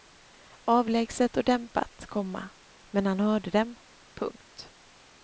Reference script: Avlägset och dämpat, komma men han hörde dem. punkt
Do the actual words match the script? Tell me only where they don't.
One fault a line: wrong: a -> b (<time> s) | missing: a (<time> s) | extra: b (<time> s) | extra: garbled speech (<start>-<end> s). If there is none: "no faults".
no faults